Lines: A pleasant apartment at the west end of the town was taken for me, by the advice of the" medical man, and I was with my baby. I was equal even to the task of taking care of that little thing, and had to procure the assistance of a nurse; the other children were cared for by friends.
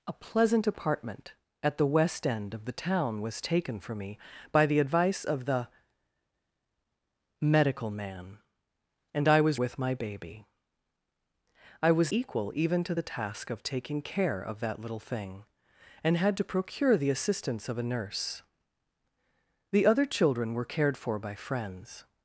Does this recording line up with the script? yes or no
yes